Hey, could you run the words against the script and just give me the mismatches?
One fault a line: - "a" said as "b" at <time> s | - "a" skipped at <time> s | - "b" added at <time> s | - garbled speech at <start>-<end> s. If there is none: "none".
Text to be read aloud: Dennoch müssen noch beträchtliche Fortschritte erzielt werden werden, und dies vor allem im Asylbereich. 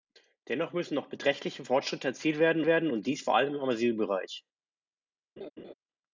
none